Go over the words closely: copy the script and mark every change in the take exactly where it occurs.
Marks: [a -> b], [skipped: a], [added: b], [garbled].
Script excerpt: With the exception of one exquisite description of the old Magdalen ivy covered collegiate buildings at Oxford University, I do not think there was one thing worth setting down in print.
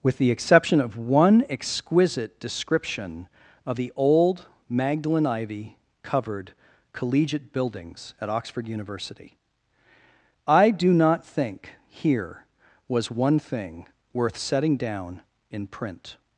With the exception of one exquisite description of the old Magdalen ivy covered collegiate buildings at Oxford University, I do not think [there -> here] was one thing worth setting down in print.